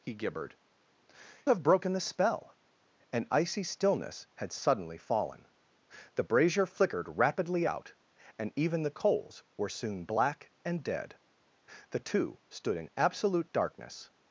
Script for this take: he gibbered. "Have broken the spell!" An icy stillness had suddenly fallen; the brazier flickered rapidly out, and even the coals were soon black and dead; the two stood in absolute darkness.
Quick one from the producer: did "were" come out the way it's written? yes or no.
yes